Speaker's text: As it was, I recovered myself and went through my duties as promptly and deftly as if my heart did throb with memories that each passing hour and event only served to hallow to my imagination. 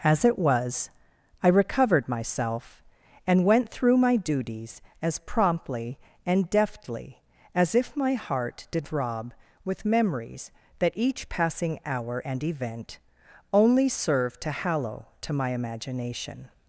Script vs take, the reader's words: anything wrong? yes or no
no